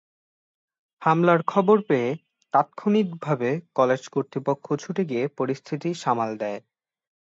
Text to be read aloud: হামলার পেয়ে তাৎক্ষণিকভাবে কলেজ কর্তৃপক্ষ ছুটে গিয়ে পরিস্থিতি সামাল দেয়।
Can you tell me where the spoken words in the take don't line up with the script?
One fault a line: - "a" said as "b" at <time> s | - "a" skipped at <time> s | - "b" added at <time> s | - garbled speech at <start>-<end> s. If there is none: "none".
- "খবর" added at 1.4 s